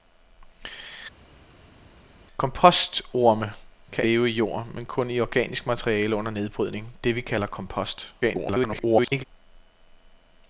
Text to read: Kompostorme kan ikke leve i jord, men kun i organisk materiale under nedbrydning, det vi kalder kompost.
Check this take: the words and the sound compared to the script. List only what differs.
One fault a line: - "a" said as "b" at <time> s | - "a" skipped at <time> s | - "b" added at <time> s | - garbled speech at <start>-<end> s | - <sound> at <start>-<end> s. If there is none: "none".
- "ikke" skipped at 4.0 s
- garbled speech at 8.2-9.2 s